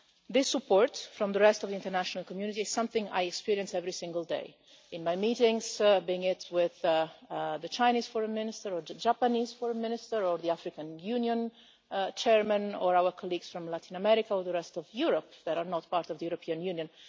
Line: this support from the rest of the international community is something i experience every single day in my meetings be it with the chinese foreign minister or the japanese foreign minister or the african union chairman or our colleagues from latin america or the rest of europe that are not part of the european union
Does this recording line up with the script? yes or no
yes